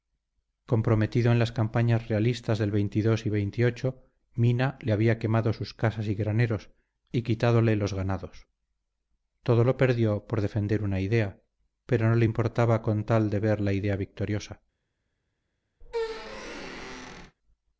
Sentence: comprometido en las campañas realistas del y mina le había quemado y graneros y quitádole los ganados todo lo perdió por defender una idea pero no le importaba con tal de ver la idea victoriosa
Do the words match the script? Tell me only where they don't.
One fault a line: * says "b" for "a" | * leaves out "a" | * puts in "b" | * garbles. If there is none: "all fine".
* puts in "sus casas"